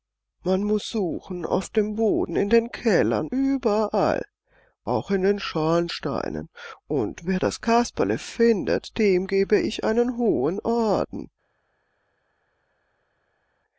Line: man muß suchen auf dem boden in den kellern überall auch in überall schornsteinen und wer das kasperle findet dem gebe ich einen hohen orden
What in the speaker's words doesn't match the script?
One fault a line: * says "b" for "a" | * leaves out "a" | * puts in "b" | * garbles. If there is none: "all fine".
* says "den" for "überall"